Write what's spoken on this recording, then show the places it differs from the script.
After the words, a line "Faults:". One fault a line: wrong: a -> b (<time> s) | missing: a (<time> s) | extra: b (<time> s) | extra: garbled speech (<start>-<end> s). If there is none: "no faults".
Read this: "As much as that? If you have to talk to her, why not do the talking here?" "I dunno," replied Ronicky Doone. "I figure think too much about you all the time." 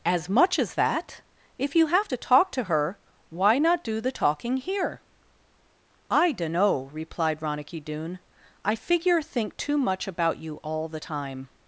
"As much as that? If you have to talk to her, why not do the talking here?" "I dunno," replied Ronicky Doone. "I figure think too much about you all the time."
Faults:
no faults